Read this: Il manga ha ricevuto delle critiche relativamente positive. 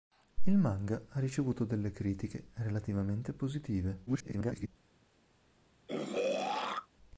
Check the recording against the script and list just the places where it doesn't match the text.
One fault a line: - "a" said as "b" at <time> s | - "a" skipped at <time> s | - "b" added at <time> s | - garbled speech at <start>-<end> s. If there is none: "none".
- garbled speech at 4.1-4.7 s